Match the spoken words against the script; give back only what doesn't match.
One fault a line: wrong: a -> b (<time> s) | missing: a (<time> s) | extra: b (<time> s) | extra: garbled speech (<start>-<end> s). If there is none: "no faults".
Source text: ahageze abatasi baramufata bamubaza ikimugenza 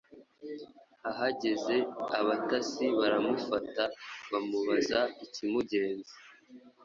no faults